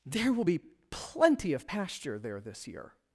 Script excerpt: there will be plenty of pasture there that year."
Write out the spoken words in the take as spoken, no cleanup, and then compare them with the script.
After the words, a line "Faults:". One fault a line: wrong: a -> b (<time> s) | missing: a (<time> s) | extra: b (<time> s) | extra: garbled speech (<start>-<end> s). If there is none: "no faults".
there will be plenty of pasture there this year."
Faults:
wrong: that -> this (2.4 s)